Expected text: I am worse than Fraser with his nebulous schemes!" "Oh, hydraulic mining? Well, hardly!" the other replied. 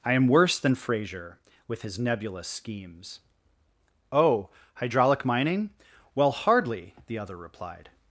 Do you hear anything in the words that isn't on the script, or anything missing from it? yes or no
no